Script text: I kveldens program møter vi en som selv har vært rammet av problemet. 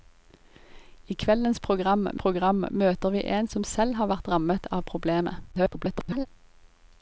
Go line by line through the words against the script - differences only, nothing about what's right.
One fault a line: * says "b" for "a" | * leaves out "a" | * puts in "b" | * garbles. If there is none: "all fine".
* puts in "program"
* garbles